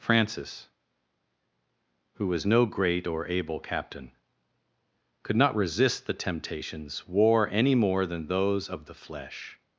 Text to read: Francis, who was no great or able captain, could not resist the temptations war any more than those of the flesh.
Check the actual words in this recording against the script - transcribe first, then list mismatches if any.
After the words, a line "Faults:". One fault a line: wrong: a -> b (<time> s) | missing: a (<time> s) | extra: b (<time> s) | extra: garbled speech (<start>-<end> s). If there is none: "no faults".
Francis, who was no great or able captain, could not resist the temptations war any more than those of the flesh.
Faults:
no faults